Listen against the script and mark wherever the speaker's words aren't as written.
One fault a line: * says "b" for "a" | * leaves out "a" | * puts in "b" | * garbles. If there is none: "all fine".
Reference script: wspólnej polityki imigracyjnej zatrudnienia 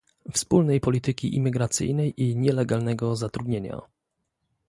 * puts in "i nielegalnego"